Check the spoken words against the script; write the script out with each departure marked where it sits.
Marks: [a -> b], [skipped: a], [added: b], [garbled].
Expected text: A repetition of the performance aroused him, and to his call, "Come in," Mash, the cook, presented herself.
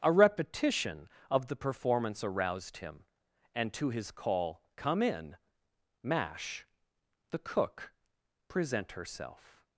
A repetition of the performance aroused him, and to his call, "Come in," Mash, the cook, [presented -> present] herself.